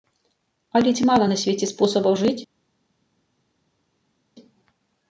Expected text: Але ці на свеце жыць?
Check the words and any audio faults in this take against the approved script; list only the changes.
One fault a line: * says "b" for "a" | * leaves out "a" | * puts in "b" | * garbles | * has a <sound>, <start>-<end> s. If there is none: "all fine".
* puts in "мала"
* puts in "спосабаў"